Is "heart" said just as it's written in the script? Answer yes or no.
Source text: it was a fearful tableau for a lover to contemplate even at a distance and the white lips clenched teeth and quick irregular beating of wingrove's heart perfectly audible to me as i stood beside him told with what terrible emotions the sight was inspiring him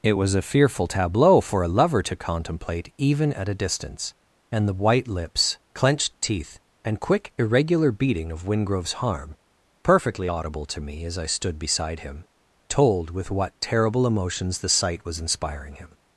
no